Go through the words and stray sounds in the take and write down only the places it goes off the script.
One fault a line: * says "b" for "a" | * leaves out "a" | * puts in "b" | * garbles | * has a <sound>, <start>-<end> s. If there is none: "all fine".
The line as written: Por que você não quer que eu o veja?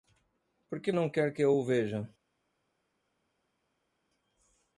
* leaves out "você"